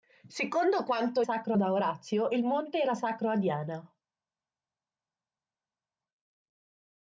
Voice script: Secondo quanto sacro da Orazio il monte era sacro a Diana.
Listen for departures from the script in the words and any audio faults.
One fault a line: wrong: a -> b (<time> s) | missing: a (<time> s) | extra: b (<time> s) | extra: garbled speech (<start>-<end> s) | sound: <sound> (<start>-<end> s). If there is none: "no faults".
no faults